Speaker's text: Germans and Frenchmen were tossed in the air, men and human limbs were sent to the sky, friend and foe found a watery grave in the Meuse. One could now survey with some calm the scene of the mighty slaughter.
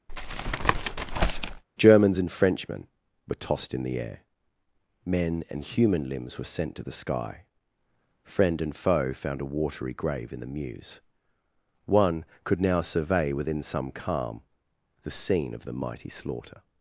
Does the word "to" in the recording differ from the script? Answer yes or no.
no